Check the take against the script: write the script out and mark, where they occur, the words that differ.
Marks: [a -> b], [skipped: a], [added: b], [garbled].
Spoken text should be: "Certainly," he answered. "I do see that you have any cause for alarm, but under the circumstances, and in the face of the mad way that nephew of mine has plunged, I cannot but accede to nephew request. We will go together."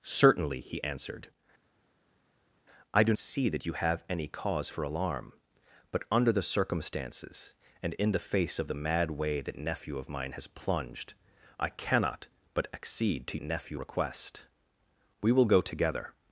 "Certainly," he answered. "I do see that you have any cause for alarm, but under the circumstances, and in the face of the mad way that nephew of mine has plunged, I cannot but accede to nephew request. We will go together."